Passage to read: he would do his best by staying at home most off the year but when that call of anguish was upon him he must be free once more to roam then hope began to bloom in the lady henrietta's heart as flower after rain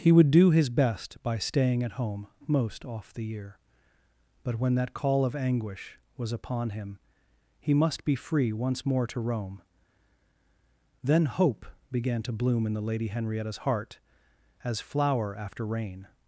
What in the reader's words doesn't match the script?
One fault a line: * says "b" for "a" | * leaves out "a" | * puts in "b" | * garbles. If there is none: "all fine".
all fine